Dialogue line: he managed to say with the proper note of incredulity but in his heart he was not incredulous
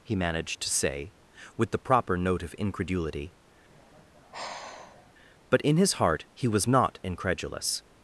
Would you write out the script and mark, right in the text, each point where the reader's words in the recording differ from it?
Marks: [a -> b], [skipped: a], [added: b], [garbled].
he managed to say with the proper note of incredulity but in his heart he was not incredulous